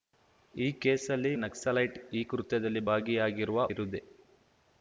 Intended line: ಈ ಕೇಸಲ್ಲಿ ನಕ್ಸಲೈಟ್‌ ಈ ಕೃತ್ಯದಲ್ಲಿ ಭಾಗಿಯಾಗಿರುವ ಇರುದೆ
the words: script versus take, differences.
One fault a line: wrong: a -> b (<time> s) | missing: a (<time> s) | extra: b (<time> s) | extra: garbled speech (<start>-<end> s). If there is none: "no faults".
no faults